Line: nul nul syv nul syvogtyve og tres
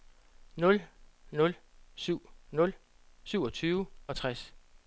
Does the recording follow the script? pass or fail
pass